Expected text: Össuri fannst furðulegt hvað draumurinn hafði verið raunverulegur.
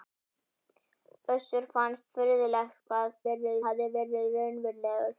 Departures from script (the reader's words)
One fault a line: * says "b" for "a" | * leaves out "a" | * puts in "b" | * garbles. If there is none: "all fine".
* says "verið" for "draumurinn"